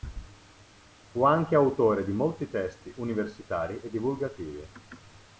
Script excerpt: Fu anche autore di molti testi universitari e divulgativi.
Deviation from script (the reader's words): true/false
false